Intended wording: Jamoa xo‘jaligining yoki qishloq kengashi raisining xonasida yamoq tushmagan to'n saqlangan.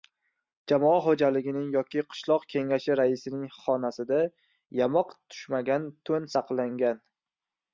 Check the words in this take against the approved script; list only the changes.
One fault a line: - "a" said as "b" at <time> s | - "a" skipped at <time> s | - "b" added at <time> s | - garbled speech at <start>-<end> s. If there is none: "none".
none